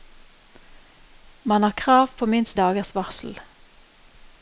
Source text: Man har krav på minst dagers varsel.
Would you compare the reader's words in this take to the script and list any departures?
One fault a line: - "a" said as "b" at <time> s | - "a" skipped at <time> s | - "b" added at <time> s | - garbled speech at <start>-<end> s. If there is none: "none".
none